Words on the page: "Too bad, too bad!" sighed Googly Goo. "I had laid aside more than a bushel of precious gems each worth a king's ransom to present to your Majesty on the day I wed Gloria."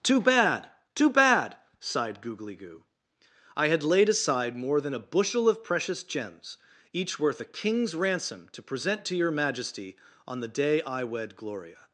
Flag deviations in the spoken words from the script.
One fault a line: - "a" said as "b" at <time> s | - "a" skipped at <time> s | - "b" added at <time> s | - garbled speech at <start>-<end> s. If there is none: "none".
none